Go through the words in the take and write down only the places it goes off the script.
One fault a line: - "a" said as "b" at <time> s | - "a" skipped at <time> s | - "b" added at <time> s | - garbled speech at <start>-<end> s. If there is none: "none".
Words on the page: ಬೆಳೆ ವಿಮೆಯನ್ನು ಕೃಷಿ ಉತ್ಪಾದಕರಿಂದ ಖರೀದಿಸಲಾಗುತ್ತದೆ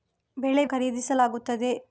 - "ವಿಮೆಯನ್ನು ಕೃಷಿ ಉತ್ಪಾದಕರಿಂದ" skipped at 0.7 s